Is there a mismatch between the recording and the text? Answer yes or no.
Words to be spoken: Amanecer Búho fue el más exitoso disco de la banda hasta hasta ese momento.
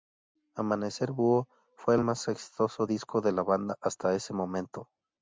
yes